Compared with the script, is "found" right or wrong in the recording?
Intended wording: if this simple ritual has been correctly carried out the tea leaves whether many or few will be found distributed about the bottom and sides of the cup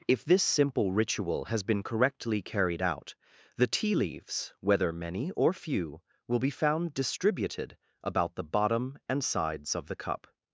right